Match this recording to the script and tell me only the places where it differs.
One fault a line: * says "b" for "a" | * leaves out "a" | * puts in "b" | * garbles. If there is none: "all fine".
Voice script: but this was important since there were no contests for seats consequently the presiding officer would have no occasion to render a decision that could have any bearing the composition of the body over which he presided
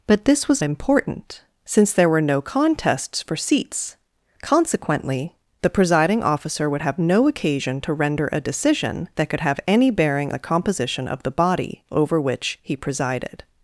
all fine